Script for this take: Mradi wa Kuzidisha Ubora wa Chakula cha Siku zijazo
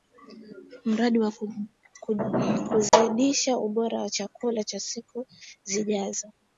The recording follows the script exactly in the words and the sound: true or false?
false